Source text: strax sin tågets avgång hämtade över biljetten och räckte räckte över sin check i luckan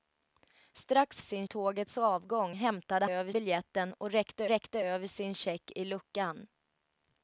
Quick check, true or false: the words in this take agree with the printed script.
true